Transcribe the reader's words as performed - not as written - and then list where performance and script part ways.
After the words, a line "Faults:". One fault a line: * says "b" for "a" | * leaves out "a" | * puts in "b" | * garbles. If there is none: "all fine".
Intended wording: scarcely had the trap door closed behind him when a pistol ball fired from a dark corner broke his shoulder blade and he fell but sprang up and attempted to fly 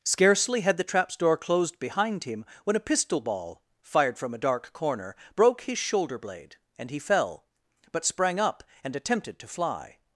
scarcely had the traps door closed behind him when a pistol ball fired from a dark corner broke his shoulder blade and he fell but sprang up and attempted to fly
Faults:
* says "traps" for "trap"